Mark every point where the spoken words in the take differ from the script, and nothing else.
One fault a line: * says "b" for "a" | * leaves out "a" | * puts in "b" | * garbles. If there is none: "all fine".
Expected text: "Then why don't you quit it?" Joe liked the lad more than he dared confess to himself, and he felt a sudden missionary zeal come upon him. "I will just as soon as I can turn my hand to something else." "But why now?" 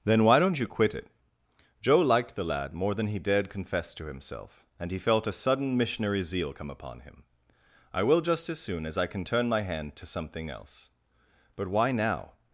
all fine